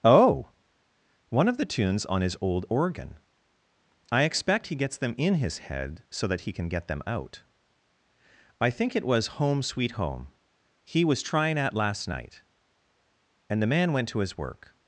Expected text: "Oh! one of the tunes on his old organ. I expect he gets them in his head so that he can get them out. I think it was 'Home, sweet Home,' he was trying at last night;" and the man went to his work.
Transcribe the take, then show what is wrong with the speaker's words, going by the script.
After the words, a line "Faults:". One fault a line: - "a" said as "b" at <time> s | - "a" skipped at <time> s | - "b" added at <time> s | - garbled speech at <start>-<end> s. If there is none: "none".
"Oh! one of the tunes on his old organ. I expect he gets them in his head so that he can get them out. I think it was 'Home, sweet Home,' he was trying at last night;" and the man went to his work.
Faults:
none